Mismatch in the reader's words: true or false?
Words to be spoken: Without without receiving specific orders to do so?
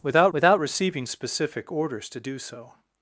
false